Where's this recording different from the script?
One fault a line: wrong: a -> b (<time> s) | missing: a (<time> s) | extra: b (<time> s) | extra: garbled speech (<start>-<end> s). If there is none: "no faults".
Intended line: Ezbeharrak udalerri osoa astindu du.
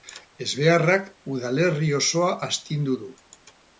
no faults